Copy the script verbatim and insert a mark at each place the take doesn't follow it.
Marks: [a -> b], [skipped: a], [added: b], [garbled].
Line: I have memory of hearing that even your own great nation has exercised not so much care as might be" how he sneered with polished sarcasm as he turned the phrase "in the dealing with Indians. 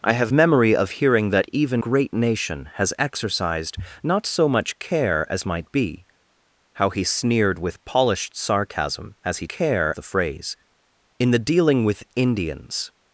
I have memory of hearing that even [skipped: your own] great nation has exercised not so much care as might be" how he sneered with polished sarcasm as he [turned -> care] the phrase "in the dealing with Indians.